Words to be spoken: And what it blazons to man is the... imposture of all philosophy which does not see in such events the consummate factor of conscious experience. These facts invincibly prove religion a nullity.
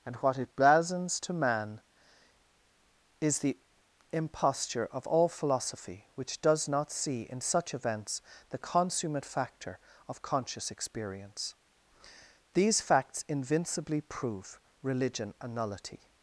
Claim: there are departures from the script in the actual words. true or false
false